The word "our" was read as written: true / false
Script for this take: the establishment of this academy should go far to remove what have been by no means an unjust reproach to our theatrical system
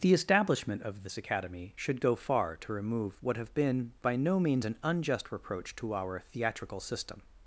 true